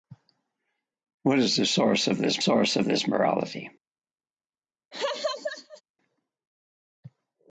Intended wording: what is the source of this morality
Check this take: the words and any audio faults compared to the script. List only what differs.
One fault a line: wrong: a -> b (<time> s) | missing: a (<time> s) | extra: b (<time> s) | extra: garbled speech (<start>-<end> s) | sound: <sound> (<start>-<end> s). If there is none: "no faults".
extra: source of this (2.4 s)
sound: laugh (4.9-5.8 s)